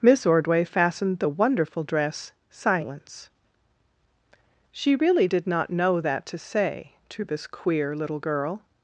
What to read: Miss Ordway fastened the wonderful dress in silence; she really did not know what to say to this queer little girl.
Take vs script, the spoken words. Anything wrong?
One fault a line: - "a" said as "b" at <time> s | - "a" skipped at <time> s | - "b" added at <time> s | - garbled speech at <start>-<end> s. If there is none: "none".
- "in" skipped at 2.3 s
- "what" said as "that" at 6.0 s